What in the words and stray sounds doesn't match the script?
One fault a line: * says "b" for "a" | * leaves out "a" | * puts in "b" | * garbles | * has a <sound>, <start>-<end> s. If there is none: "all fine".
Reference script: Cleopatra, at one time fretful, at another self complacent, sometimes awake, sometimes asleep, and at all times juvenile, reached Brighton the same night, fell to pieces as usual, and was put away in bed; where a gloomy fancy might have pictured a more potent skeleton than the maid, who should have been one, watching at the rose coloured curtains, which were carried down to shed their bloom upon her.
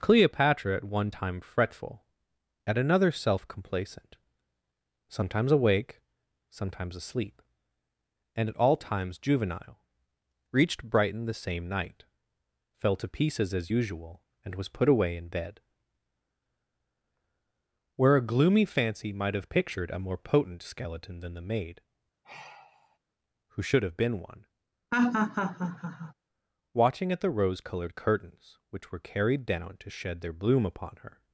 * has a sigh, 22.2-23.0 s
* has a laugh, 24.9-26.1 s